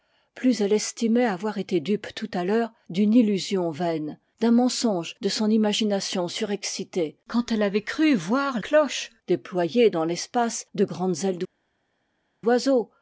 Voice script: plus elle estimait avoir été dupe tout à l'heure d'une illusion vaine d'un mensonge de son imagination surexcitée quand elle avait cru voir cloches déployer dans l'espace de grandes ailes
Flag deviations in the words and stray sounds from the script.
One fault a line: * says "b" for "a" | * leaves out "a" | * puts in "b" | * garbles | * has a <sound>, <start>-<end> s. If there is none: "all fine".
all fine